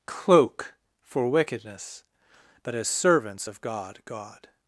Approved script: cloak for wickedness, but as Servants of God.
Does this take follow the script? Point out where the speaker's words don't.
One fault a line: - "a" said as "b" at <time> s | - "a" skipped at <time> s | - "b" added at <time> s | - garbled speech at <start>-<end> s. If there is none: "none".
- "God" added at 4.0 s